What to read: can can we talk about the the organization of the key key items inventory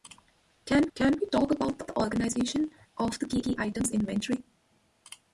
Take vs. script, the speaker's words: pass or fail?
pass